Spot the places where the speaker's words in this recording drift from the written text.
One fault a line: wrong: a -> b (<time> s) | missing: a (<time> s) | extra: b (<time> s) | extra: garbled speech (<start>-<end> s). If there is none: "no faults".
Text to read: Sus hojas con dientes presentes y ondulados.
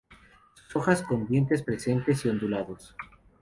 no faults